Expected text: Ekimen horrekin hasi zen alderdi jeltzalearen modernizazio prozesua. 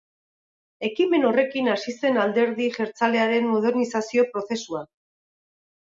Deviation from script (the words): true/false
false